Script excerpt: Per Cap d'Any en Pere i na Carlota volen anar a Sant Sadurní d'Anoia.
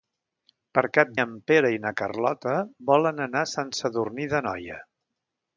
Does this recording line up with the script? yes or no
no